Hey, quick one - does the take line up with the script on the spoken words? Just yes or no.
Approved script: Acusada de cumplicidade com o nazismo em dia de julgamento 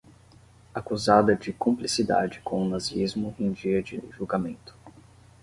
yes